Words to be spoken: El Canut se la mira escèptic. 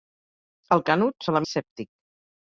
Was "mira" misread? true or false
true